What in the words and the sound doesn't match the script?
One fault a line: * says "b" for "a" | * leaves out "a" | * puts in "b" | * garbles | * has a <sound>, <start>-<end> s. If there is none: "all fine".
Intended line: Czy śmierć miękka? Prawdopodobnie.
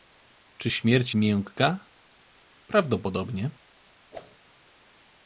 * has a whoosh, 4.1-4.4 s